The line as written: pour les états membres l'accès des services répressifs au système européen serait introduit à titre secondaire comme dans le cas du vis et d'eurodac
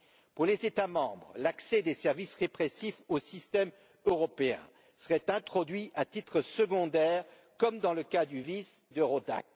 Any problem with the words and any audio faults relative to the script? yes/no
yes